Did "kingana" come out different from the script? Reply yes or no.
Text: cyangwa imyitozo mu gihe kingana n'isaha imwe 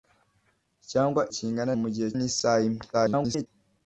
yes